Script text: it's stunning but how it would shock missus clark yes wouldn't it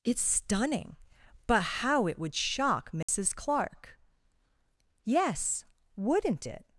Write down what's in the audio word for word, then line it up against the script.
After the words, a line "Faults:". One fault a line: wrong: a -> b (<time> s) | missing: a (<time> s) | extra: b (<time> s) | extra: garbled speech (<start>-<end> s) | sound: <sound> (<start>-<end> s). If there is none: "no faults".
it's stunning but how it would shock missus clark yes wouldn't it
Faults:
sound: dropout (3.0-3.1 s)